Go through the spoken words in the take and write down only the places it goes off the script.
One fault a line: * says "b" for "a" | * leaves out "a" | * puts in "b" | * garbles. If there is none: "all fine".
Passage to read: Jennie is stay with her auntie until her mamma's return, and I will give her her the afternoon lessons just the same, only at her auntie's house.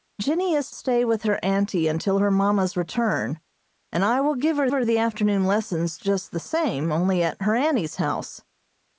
all fine